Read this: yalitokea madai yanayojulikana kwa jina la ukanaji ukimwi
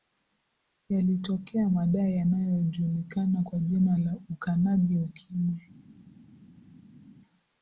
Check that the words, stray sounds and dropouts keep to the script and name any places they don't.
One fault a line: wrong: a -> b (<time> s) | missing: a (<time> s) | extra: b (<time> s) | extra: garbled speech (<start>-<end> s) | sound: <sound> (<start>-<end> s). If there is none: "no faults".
no faults